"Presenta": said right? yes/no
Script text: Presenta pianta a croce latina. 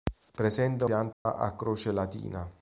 yes